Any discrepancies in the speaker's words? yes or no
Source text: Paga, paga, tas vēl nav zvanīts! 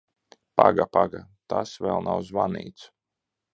no